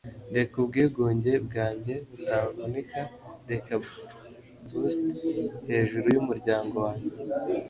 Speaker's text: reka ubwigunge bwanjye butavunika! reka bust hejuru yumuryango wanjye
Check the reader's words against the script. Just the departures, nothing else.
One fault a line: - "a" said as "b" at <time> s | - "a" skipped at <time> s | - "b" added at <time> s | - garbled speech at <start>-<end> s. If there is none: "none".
none